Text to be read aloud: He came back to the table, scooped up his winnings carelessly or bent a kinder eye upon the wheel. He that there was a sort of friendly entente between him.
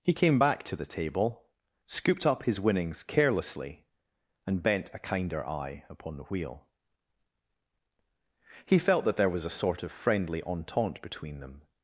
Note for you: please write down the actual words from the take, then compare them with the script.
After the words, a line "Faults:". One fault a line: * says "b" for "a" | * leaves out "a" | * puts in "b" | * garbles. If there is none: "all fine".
He came back to the table, scooped up his winnings carelessly and bent a kinder eye upon the wheel. He felt that there was a sort of friendly entente between them.
Faults:
* says "and" for "or"
* puts in "felt"
* says "them" for "him"